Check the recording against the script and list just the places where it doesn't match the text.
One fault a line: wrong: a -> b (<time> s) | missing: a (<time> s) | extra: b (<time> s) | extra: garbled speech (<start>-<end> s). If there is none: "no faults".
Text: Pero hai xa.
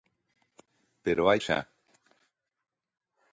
no faults